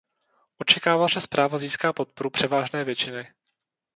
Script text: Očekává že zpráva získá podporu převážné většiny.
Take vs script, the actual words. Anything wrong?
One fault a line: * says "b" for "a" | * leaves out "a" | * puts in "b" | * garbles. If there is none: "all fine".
all fine